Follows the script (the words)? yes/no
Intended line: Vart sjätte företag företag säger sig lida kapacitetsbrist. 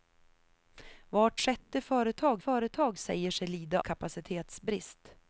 yes